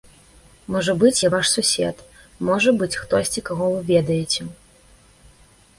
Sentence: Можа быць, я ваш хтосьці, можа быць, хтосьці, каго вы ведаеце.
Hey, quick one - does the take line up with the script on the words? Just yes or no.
no